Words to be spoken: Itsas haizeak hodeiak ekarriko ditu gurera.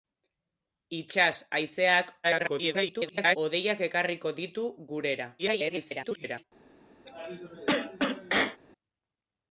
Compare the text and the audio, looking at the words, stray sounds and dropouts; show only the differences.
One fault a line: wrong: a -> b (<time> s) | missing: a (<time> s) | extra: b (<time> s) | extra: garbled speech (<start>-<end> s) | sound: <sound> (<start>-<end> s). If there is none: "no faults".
extra: garbled speech (2.2-3.4 s)
extra: garbled speech (5.4-6.4 s)
sound: cough (7.1-8.6 s)